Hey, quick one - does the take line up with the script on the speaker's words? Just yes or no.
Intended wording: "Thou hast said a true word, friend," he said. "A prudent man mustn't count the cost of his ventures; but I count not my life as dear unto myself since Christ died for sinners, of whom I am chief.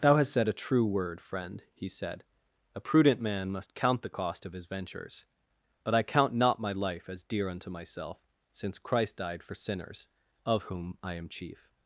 no